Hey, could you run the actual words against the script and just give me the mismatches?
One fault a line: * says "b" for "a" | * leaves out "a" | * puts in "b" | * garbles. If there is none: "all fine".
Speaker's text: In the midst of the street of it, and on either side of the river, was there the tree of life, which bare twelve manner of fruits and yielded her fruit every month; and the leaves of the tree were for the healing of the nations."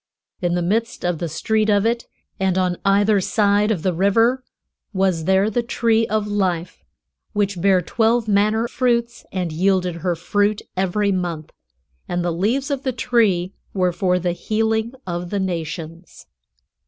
* leaves out "of"